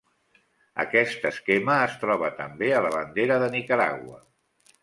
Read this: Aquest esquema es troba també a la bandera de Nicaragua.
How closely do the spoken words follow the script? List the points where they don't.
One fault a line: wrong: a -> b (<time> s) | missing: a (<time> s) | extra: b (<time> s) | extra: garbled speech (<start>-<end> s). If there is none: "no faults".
no faults